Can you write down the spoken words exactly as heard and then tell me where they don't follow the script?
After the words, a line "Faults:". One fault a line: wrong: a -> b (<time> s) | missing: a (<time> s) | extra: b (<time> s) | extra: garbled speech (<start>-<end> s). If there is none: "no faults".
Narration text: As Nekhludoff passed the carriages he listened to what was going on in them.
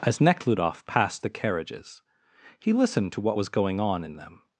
As Nekhludoff passed the carriages he listened to what was going on in them.
Faults:
no faults